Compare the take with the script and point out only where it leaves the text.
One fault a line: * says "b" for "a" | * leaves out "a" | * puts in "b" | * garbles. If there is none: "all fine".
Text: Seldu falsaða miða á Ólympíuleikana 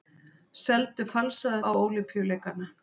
* leaves out "miða"